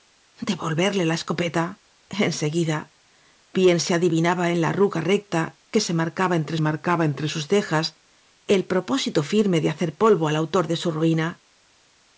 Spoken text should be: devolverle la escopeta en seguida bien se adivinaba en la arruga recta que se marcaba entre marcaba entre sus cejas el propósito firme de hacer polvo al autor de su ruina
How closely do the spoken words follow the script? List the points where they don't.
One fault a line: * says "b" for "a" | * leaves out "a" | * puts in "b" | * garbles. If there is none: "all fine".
all fine